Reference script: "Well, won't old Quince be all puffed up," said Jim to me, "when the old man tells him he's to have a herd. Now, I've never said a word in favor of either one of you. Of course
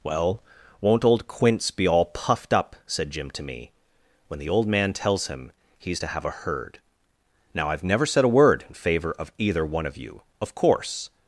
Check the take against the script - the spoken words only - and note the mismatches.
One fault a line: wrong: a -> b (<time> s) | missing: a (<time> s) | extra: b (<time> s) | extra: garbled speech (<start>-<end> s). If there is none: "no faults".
no faults